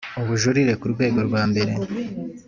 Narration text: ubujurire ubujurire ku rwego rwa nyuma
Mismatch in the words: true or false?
true